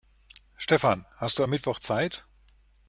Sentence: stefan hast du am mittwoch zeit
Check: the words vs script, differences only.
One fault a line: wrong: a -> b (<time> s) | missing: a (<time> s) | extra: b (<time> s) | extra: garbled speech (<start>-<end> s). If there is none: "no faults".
no faults